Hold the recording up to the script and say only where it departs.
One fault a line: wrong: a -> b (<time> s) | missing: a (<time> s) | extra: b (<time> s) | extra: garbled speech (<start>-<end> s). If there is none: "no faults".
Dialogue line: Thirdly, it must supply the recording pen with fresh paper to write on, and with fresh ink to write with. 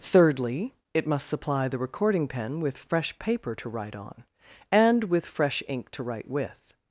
no faults